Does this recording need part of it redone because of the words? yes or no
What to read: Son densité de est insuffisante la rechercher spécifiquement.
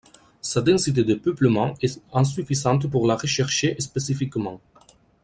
yes